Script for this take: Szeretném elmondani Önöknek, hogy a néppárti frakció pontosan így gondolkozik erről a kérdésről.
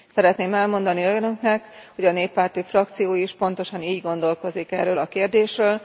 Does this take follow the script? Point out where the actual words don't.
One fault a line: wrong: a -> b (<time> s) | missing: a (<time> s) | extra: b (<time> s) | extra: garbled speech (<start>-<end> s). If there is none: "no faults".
extra: is (3.1 s)